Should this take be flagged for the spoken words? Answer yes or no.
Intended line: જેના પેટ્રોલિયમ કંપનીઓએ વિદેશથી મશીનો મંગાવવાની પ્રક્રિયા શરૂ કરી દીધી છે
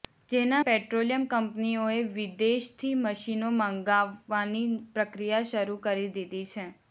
no